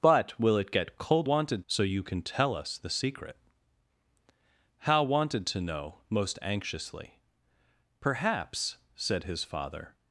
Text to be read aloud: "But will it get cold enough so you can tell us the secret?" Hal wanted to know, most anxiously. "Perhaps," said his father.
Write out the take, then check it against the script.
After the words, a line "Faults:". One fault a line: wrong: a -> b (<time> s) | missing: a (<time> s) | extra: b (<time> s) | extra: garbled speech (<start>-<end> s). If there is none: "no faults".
"But will it get cold wanted so you can tell us the secret?" Hal wanted to know, most anxiously. "Perhaps," said his father.
Faults:
wrong: enough -> wanted (1.2 s)